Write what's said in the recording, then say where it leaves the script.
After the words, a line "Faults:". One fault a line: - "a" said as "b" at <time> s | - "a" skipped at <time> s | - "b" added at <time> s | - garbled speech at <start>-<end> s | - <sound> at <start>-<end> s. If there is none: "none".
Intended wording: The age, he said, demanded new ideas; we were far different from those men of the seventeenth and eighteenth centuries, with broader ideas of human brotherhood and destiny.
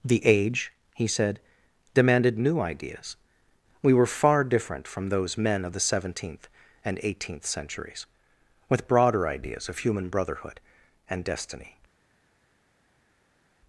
The age, he said, demanded new ideas; we were far different from those men of the seventeenth and eighteenth centuries, with broader ideas of human brotherhood and destiny.
Faults:
none